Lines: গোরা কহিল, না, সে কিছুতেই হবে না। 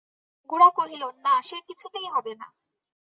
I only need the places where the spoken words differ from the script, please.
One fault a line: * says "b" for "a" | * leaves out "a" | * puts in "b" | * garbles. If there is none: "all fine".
all fine